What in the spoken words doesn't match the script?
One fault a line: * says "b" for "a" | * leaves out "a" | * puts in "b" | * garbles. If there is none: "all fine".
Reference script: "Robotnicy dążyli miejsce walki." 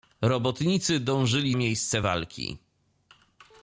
all fine